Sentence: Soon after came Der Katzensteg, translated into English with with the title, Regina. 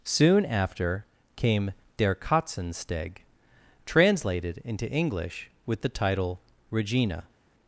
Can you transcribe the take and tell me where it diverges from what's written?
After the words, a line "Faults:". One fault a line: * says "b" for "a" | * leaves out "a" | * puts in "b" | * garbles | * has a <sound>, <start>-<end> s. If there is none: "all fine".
Soon after came Der Katzensteg, translated into English with the title, Regina.
Faults:
* leaves out "with"